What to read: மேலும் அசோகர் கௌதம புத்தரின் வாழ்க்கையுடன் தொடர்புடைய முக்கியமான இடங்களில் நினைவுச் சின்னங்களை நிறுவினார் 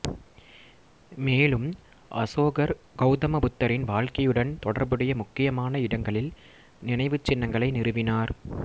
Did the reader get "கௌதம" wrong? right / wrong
right